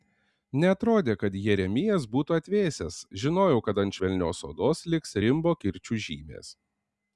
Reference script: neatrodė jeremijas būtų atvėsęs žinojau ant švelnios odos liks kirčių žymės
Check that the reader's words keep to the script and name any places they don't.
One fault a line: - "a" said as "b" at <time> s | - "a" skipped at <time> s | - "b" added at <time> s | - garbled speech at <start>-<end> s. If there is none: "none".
- "kad" added at 1.2 s
- "kad" added at 3.7 s
- "rimbo" added at 5.2 s